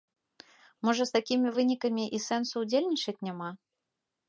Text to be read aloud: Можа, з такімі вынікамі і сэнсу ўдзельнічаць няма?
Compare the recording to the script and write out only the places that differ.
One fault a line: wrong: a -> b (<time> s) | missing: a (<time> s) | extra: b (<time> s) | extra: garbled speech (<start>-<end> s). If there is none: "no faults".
no faults